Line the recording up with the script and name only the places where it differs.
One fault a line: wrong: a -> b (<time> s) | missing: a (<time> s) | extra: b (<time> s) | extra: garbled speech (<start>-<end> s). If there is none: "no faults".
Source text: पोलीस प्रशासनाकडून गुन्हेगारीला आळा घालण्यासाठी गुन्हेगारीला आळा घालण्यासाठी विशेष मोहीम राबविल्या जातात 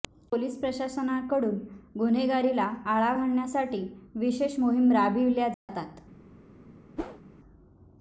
missing: गुन्हेगारीला आळा घालण्यासाठी (3.8 s)